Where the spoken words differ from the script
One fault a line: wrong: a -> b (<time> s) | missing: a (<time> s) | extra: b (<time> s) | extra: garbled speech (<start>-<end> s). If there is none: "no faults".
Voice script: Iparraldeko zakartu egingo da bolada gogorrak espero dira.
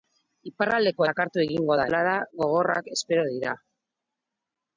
no faults